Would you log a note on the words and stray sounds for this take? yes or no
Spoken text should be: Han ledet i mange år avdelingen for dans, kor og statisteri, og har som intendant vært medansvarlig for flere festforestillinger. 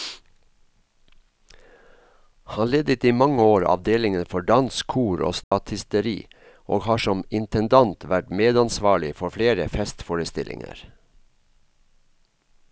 yes